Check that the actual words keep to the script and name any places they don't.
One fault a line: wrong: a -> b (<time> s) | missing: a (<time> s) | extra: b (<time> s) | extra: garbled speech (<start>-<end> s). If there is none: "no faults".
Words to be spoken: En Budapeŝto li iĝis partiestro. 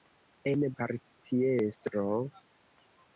missing: Budapeŝto li iĝis (0.6 s)